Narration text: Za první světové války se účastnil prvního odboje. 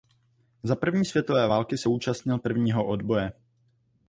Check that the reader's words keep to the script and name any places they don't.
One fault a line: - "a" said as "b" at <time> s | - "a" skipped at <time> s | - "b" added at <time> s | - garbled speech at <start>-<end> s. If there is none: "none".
none